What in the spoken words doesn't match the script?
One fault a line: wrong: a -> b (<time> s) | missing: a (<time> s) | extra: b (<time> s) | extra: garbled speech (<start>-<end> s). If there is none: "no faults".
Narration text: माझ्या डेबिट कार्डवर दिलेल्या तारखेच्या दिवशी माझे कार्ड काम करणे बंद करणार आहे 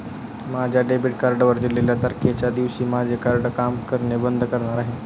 no faults